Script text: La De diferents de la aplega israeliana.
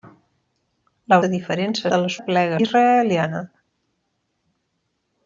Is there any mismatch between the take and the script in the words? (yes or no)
no